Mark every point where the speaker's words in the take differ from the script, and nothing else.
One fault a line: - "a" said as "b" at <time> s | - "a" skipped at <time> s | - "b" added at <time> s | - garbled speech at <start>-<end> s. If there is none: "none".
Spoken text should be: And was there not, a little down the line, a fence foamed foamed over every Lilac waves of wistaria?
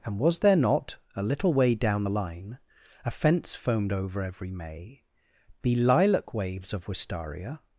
- "way" added at 1.5 s
- "foamed" skipped at 3.9 s
- "May be" added at 4.5 s